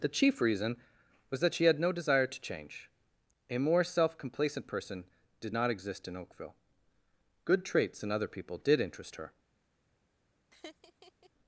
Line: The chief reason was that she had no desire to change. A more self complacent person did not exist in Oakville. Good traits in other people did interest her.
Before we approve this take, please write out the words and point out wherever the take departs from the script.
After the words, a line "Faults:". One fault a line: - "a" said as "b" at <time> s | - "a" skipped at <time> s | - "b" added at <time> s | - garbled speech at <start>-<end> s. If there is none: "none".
The chief reason was that she had no desire to change. A more self complacent person did not exist in Oakville. Good traits in other people did interest her.
Faults:
none